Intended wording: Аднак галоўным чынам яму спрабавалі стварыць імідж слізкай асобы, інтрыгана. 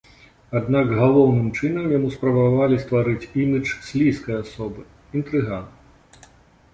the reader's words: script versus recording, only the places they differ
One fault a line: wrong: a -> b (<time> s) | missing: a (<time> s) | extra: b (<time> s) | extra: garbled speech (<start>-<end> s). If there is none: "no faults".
no faults